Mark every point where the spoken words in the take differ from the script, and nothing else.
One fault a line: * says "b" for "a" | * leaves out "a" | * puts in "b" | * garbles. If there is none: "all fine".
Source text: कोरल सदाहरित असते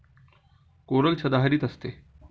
all fine